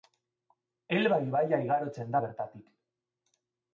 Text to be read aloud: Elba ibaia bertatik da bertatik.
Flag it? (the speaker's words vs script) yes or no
yes